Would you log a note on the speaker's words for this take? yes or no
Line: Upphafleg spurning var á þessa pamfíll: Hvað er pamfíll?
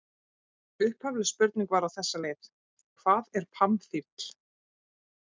yes